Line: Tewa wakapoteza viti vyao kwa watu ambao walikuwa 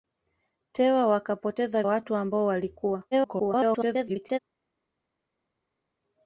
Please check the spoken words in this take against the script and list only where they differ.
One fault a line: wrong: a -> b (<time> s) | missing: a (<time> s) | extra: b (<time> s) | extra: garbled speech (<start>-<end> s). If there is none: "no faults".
missing: viti vyao kwa (1.8 s)
extra: garbled speech (3.1-4.4 s)